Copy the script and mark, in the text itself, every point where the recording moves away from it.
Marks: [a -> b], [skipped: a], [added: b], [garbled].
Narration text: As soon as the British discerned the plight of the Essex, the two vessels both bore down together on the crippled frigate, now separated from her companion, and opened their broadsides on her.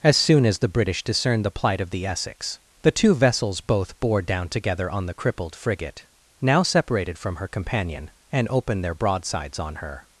As soon as the British discerned the plight of the Essex, the two vessels both bore down together on the crippled frigate, now separated from her companion, and opened their broadsides on her.